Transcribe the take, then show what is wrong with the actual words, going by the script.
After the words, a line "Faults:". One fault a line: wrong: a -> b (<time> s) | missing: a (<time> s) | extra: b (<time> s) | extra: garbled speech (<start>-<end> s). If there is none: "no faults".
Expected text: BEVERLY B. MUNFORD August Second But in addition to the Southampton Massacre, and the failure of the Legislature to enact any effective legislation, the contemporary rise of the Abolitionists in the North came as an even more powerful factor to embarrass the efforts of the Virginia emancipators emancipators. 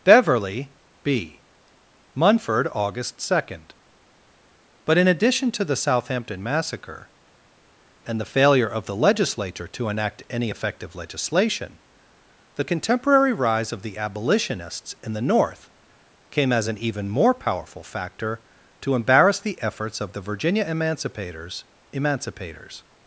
BEVERLY B. MUNFORD August Second But in addition to the Southampton Massacre, and the failure of the Legislature to enact any effective legislation, the contemporary rise of the Abolitionists in the North came as an even more powerful factor to embarrass the efforts of the Virginia emancipators emancipators.
Faults:
no faults